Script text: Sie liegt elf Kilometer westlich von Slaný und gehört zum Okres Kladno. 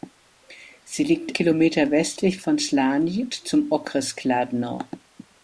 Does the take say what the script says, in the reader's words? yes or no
no